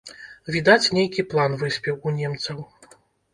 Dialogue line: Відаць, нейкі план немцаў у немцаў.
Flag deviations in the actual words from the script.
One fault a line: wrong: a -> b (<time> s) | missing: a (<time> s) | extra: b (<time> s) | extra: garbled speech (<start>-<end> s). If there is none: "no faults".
wrong: немцаў -> выспеў (1.6 s)